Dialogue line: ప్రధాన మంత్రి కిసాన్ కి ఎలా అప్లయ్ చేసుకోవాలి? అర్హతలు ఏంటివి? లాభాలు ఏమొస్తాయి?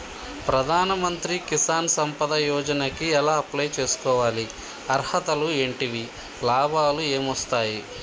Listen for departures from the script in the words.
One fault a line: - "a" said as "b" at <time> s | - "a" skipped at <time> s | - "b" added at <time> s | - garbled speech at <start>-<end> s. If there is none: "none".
- "సంపద యోజన" added at 2.0 s